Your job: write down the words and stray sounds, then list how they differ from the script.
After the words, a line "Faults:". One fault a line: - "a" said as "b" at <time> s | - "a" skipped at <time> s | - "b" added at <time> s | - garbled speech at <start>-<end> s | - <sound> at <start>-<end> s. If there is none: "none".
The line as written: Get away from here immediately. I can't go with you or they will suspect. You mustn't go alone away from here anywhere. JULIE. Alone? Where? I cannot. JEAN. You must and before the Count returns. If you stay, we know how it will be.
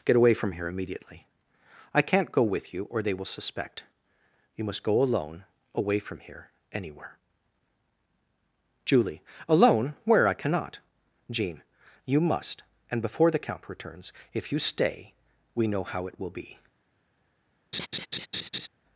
Get away from here immediately. I can't go with you or they will suspect. You must go alone away from here anywhere. JULIE. Alone? Where? I cannot. JEAN. You must and before the Count returns. If you stay, we know how it will be.
Faults:
- "mustn't" said as "must" at 4.6 s
- laugh at 17.7-18.7 s